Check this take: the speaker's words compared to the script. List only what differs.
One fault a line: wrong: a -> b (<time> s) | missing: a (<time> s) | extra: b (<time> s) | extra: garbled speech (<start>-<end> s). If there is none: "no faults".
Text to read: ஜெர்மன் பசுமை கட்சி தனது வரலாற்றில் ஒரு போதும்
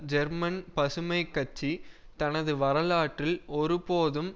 no faults